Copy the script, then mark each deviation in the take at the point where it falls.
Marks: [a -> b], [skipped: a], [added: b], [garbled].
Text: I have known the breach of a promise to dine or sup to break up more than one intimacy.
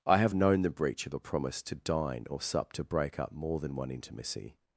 I have known the breach of a promise to dine or sup to break up more than one intimacy.